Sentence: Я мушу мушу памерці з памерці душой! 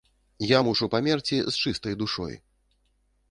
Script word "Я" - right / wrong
right